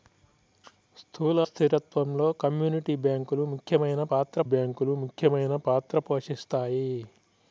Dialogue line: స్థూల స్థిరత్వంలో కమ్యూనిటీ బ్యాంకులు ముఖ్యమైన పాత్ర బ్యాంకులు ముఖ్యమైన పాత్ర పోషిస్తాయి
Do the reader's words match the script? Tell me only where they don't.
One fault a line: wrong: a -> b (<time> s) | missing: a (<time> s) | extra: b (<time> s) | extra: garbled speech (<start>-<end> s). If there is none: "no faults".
no faults